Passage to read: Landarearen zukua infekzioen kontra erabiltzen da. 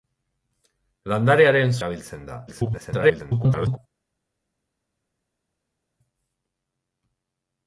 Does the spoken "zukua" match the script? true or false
false